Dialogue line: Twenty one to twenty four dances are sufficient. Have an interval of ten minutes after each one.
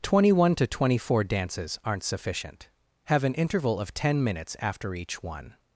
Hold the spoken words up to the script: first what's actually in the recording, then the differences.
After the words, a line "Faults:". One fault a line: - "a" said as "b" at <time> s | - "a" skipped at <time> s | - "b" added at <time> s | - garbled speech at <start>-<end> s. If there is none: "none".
Twenty one to twenty four dances aren't sufficient. Have an interval of ten minutes after each one.
Faults:
- "are" said as "aren't" at 1.9 s